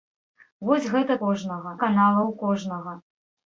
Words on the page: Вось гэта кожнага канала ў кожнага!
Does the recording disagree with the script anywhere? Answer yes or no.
no